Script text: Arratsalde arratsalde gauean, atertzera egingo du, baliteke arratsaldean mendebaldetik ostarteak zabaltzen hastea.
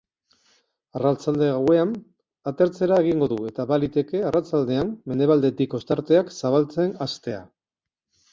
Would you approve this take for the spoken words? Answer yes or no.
no